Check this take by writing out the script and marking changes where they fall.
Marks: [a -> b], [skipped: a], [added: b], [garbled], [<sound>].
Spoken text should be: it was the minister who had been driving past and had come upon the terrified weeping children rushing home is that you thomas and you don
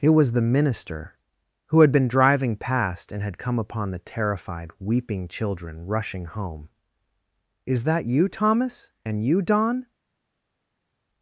it was the minister who had been driving past and had come upon the terrified weeping children rushing home is that you thomas and you don